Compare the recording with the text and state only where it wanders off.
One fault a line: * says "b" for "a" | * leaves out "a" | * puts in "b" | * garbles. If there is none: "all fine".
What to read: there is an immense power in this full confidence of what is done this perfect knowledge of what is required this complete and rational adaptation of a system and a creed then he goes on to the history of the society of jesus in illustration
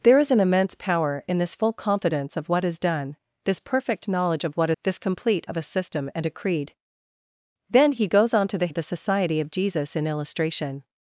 * leaves out "is required"
* leaves out "and rational adaptation"
* leaves out "history"